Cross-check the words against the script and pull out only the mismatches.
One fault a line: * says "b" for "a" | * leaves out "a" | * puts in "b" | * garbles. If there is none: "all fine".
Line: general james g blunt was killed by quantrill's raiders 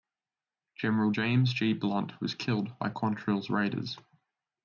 all fine